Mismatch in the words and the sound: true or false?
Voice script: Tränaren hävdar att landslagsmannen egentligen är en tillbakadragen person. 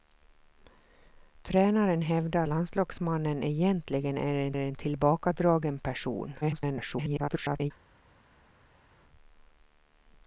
true